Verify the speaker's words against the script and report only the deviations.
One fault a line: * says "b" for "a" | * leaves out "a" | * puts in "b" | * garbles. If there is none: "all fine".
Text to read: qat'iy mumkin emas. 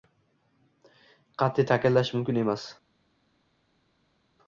* puts in "ta'kidlash"